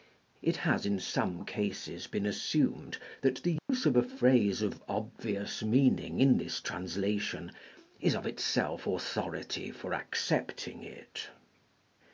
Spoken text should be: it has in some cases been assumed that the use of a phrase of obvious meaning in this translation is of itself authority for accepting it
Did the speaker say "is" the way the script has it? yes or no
yes